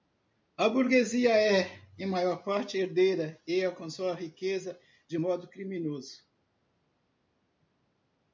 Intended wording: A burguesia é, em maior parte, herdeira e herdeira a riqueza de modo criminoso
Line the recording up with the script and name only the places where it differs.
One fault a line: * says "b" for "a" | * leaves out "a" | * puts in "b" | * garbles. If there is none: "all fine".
* says "alcançou" for "herdeira"